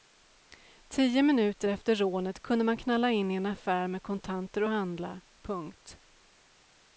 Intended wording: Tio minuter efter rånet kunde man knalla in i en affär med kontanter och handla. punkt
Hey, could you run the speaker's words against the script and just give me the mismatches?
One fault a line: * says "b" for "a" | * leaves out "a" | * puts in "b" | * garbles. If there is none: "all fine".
all fine